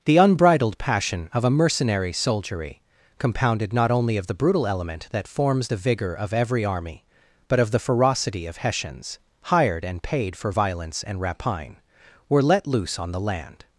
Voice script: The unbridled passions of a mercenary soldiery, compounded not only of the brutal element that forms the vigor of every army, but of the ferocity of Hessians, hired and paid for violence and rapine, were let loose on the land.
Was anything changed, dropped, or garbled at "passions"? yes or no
yes